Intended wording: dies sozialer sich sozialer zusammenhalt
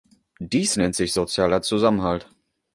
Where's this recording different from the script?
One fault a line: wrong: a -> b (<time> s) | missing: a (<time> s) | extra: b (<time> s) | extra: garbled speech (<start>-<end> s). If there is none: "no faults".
wrong: sozialer -> nennt (0.8 s)